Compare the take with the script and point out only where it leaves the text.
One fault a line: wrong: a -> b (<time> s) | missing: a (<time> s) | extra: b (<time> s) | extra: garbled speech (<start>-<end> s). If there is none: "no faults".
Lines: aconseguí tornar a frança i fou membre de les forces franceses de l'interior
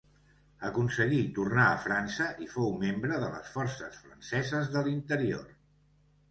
no faults